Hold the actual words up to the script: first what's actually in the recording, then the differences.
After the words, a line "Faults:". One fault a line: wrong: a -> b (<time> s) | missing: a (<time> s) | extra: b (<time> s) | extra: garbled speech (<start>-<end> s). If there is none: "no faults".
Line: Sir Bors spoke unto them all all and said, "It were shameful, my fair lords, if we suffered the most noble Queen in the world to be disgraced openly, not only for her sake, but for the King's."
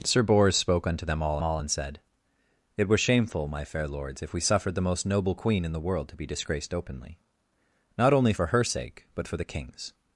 Sir Bors spoke unto them all all and said, "It were shameful, my fair lords, if we suffered the most noble Queen in the world to be disgraced openly, not only for her sake, but for the King's."
Faults:
no faults